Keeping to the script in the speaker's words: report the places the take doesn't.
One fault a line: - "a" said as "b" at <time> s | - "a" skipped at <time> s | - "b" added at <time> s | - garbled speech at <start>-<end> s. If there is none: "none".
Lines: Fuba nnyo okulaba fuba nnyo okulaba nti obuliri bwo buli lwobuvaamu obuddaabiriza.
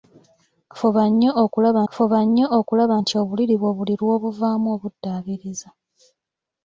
none